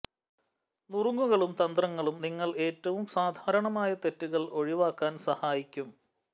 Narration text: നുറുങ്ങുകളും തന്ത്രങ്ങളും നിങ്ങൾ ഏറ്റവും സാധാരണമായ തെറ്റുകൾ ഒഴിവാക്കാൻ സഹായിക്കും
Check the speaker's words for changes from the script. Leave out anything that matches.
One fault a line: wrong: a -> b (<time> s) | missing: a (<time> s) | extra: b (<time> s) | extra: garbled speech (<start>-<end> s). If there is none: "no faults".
no faults